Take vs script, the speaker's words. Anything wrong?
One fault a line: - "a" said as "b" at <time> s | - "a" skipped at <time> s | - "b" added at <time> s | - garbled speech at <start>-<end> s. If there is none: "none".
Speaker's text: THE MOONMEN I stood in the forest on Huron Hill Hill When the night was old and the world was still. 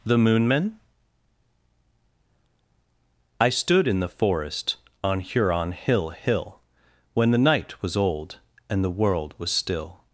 none